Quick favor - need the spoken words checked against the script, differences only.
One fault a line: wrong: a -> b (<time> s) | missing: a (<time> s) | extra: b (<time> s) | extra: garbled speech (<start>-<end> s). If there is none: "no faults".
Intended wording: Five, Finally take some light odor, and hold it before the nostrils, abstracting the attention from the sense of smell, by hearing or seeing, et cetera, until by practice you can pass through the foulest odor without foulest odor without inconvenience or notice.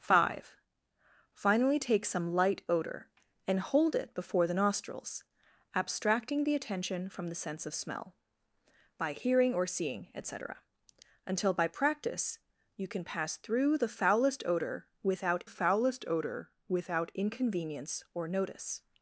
no faults